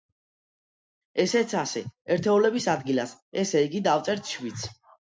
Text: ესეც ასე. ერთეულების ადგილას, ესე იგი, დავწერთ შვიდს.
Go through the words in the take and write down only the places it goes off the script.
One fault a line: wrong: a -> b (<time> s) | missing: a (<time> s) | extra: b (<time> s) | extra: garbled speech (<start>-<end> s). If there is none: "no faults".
no faults